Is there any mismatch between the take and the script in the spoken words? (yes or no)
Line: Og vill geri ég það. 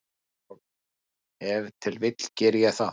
yes